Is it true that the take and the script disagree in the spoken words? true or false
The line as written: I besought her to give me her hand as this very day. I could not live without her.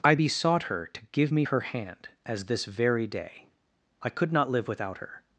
false